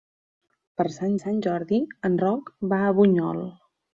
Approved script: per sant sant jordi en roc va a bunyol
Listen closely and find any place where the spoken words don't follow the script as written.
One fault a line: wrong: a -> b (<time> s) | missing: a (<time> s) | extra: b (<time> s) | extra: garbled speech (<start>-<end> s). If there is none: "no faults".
no faults